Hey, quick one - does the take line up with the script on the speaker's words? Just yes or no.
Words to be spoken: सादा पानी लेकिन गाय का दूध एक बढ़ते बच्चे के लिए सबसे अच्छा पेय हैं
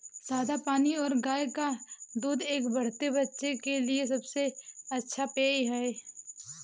no